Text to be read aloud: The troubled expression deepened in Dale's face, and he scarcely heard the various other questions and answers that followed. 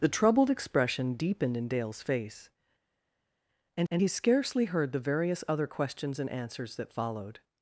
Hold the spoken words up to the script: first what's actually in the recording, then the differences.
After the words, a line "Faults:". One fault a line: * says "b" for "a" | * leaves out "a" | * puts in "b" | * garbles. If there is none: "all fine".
The troubled expression deepened in Dale's face, and and he scarcely heard the various other questions and answers that followed.
Faults:
* puts in "and"